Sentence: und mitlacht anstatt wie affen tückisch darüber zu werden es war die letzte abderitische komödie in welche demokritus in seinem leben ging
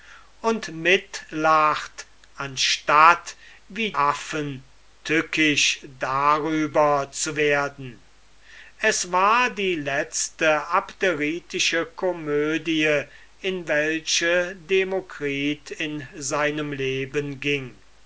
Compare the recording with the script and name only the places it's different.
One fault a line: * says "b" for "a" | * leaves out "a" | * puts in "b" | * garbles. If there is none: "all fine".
all fine